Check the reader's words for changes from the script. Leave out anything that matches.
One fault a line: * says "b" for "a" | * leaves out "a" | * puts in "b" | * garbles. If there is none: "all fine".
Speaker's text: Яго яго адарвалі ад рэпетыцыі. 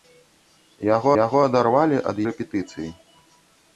all fine